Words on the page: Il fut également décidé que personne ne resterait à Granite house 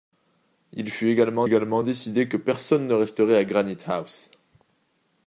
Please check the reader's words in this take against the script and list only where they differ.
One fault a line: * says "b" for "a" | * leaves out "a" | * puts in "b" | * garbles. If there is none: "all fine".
* puts in "également"